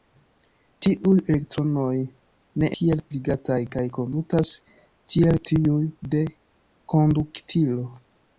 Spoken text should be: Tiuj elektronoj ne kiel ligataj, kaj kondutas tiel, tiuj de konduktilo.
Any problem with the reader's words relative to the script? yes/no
no